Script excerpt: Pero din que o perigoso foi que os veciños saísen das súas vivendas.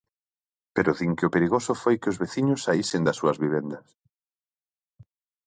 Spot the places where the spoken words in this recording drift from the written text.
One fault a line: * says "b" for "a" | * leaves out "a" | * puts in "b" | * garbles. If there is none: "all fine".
all fine